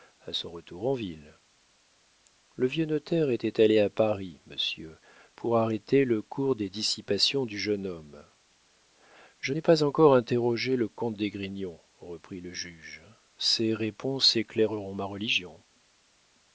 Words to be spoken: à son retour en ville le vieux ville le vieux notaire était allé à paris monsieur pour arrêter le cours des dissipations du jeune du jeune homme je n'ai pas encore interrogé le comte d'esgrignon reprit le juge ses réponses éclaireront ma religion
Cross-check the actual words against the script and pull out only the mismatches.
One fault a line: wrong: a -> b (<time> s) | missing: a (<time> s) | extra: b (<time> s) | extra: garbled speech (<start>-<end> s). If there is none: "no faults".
missing: ville le vieux (2.9 s)
missing: du jeune (7.8 s)